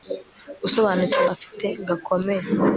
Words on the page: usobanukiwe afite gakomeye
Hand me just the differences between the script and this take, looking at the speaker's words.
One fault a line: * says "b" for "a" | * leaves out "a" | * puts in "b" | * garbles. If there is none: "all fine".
all fine